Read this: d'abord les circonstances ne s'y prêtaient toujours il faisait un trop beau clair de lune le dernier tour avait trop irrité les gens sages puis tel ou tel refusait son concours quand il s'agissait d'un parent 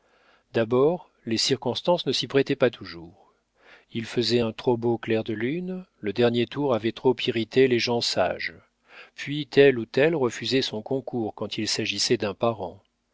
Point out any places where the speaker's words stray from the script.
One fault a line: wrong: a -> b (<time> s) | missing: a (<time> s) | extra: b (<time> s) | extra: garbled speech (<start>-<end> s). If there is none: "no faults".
extra: pas (2.5 s)